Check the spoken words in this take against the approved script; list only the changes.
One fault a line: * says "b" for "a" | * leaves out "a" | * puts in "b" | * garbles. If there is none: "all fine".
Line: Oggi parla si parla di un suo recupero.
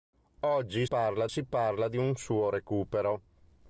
all fine